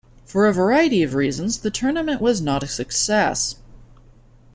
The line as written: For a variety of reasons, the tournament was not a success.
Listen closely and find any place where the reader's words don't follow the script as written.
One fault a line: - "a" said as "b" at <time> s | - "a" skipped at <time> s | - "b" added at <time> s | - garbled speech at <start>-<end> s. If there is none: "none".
none